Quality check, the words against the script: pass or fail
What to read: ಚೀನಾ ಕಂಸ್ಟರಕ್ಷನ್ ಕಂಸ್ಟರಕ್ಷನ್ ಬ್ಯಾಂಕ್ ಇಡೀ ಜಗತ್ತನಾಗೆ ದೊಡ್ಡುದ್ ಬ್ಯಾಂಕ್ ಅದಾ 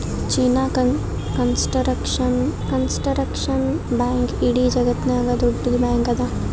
pass